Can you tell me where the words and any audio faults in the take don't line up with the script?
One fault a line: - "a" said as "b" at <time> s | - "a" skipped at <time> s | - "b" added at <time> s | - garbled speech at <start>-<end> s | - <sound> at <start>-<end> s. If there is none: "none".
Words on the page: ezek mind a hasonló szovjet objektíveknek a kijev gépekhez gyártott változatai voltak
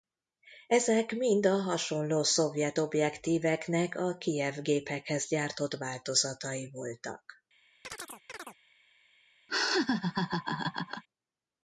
- chirp at 7.8-8.6 s
- laugh at 9.5-11.0 s